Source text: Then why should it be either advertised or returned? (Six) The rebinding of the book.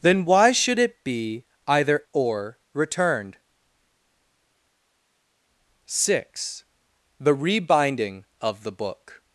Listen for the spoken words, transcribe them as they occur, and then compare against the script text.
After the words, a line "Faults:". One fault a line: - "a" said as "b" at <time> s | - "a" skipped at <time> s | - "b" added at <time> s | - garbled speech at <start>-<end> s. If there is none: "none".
Then why should it be either or returned? (Six) The rebinding of the book.
Faults:
- "advertised" skipped at 2.0 s